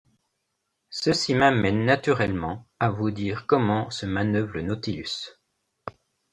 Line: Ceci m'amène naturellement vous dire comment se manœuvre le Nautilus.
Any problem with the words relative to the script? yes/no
yes